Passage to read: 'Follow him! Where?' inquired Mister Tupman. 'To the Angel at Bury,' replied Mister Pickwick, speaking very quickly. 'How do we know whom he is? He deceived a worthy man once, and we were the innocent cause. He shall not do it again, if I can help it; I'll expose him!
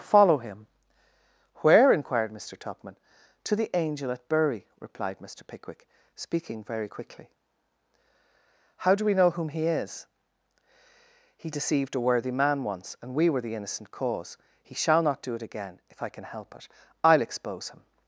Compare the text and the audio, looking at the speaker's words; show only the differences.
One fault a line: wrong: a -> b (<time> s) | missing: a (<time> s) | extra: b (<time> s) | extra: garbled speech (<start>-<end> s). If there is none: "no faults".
no faults